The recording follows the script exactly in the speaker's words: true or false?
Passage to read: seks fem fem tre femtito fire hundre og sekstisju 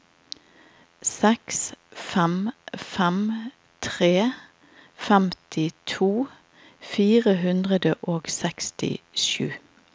true